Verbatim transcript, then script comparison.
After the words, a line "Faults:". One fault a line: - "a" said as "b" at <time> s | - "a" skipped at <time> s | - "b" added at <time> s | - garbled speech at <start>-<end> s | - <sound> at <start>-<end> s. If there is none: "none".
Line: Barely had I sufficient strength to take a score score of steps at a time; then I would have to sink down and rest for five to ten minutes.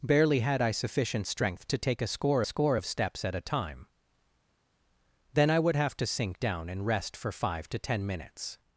Barely had I sufficient strength to take a score score of steps at a time; then I would have to sink down and rest for five to ten minutes.
Faults:
none